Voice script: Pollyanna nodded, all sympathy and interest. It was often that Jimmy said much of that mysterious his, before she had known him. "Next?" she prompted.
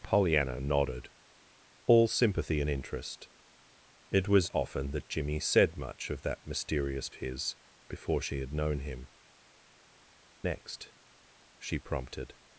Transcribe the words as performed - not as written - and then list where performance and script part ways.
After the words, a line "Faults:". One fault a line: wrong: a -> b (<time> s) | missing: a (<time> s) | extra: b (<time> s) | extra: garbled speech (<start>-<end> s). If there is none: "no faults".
Pollyanna nodded, all sympathy and interest. It was often that Jimmy said much of that mysterious his, before she had known him. "Next?" she prompted.
Faults:
no faults